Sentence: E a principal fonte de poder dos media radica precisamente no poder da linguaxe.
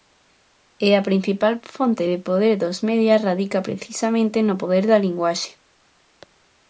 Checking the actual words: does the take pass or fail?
pass